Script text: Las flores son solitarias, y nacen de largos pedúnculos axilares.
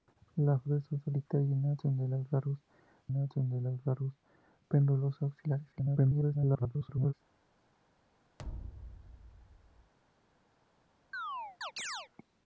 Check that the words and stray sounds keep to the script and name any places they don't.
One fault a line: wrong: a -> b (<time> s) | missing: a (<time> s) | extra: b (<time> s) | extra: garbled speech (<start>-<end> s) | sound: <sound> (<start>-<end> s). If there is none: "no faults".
extra: nacen de largos (3.1 s)
extra: garbled speech (5.7-7.1 s)
sound: thud (8.4-9.9 s)
sound: chirp (11.1-12.1 s)